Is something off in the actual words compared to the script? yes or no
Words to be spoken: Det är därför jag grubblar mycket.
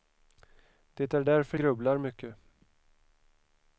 yes